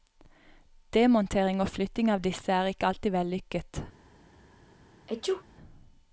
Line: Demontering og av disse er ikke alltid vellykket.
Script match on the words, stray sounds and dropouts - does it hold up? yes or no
no